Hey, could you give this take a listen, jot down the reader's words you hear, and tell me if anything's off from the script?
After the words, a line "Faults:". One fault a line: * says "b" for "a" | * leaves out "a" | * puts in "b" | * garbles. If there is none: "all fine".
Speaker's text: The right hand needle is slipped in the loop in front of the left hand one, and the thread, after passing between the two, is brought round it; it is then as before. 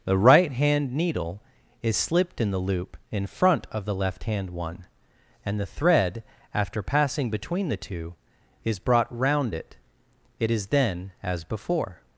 The right hand needle is slipped in the loop in front of the left hand one, and the thread, after passing between the two, is brought round it; it is then as before.
Faults:
all fine